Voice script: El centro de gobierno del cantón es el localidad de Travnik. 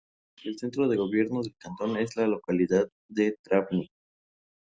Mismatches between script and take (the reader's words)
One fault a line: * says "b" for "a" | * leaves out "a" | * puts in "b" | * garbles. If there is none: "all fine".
* says "la" for "el"